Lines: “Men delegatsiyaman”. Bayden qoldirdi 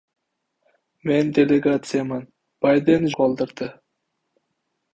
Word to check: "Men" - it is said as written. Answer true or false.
true